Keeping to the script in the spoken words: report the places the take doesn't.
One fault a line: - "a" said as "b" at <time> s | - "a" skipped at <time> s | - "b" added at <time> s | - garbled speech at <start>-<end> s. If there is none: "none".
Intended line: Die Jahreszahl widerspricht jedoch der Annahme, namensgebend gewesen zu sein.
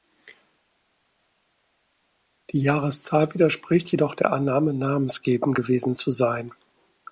none